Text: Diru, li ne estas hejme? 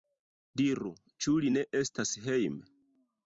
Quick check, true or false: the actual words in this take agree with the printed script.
false